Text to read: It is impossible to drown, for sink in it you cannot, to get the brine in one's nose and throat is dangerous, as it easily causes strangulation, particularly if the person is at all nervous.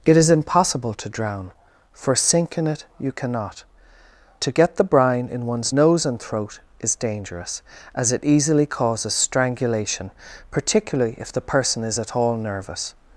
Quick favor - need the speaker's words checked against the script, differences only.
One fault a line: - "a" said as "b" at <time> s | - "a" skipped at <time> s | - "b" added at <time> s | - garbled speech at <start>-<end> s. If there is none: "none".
none